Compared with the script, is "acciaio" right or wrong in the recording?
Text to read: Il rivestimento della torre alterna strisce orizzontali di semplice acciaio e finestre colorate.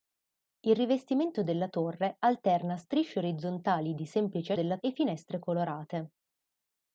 wrong